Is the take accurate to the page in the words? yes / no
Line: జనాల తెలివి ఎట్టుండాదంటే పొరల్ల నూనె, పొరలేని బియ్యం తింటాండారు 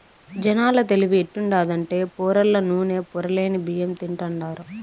yes